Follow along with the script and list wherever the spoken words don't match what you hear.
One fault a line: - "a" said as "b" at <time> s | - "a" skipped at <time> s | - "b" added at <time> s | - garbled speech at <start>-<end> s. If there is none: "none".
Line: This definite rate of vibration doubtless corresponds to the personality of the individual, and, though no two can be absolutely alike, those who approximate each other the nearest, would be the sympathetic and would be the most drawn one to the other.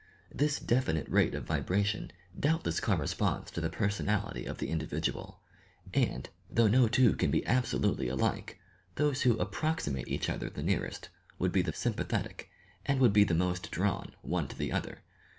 none